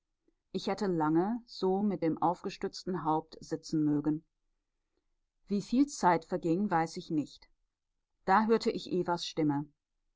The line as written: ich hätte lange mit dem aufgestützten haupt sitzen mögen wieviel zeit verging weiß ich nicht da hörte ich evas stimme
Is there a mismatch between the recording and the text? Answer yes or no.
yes